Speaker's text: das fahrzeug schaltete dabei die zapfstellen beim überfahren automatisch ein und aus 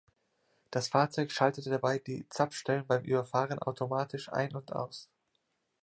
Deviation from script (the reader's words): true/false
false